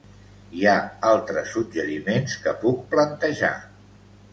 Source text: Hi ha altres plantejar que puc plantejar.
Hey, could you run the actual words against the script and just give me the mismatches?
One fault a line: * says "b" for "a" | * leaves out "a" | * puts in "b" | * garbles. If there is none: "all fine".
* says "suggeriments" for "plantejar"